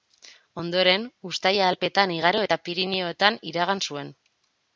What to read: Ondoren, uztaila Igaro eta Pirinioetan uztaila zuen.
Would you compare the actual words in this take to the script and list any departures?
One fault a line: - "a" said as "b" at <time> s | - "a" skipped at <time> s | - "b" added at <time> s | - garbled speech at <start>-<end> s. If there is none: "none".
- "Alpeetan" added at 1.7 s
- "uztaila" said as "iragan" at 3.5 s